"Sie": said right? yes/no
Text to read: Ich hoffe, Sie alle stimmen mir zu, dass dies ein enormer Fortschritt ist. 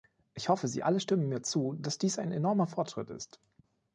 yes